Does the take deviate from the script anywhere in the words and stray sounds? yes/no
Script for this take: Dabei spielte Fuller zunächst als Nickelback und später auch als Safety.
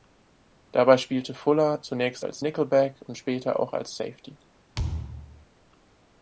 yes